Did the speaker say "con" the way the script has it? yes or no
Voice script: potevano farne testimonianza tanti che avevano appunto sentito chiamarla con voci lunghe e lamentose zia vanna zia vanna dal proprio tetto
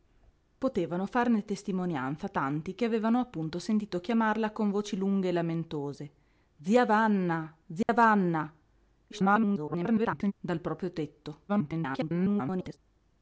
yes